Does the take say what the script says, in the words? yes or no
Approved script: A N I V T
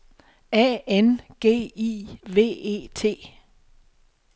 no